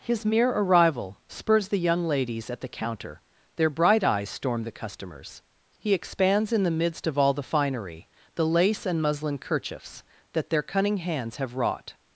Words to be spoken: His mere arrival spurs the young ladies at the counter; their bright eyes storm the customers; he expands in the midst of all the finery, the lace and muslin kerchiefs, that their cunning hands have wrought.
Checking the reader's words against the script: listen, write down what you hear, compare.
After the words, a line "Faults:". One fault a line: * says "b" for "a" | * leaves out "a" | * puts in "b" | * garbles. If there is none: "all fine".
His mere arrival spurs the young ladies at the counter; their bright eyes storm the customers; he expands in the midst of all the finery, the lace and muslin kerchiefs, that their cunning hands have wrought.
Faults:
all fine